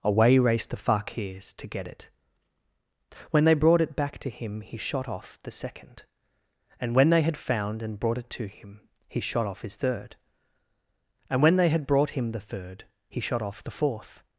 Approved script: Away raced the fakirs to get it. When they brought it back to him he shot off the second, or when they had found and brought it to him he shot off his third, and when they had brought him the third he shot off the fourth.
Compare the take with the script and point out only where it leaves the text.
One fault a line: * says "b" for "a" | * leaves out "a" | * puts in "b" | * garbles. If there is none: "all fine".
* says "and" for "or"